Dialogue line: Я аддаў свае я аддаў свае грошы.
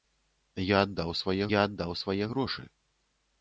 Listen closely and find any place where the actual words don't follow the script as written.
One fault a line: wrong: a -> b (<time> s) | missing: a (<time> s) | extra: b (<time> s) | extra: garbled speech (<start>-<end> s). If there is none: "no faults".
no faults